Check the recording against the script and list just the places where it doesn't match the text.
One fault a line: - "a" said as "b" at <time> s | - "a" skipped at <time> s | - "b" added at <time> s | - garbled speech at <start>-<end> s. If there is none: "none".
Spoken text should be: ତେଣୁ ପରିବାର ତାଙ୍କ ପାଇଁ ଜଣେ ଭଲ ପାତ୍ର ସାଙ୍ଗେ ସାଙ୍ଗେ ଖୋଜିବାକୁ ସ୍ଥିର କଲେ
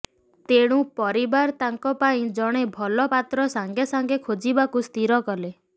none